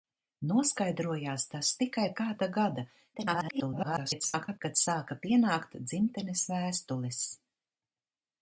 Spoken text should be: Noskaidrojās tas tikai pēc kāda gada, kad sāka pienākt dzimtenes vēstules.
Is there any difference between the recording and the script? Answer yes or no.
yes